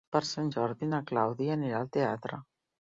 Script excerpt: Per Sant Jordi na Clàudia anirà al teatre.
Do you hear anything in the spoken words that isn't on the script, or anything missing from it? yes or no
no